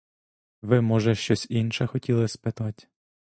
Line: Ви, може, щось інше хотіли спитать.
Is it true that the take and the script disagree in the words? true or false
false